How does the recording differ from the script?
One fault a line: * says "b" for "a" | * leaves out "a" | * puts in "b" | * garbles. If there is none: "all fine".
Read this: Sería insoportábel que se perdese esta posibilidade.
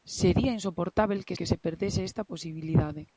* puts in "que"